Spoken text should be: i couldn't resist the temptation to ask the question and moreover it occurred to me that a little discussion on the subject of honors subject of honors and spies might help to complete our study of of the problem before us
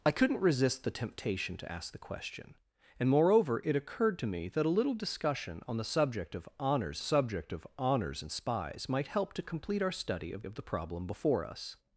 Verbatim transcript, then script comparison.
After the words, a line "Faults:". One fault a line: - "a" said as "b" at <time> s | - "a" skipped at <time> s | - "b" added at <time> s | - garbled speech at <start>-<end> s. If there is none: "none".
i couldn't resist the temptation to ask the question and moreover it occurred to me that a little discussion on the subject of honors subject of honors and spies might help to complete our study of of the problem before us
Faults:
none